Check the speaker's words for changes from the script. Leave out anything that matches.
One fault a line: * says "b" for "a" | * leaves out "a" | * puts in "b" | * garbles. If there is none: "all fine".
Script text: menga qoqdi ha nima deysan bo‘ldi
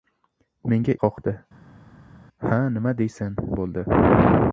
all fine